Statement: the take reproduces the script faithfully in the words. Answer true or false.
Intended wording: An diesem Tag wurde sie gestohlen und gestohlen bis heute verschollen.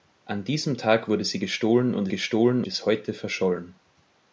true